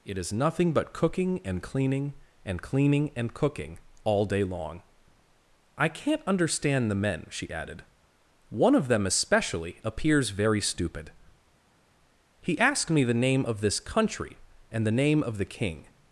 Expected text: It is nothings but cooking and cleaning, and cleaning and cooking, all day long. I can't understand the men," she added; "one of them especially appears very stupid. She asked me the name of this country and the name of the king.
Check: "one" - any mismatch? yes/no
no